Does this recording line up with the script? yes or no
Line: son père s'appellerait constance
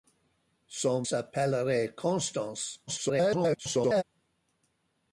no